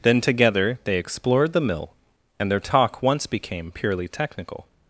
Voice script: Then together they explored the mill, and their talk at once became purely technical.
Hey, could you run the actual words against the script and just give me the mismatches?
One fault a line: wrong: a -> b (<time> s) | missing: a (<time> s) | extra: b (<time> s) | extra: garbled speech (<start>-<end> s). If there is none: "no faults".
missing: at (3.0 s)